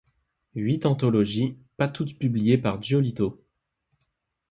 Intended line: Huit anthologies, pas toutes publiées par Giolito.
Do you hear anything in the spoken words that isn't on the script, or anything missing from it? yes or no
no